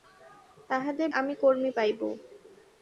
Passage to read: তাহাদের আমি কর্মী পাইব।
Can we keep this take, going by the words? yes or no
yes